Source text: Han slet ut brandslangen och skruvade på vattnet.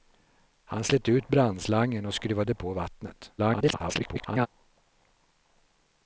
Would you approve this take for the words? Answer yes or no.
no